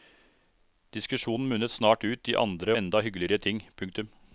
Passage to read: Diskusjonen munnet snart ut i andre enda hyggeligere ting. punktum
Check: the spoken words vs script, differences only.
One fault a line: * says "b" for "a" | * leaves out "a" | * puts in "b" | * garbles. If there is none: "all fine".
all fine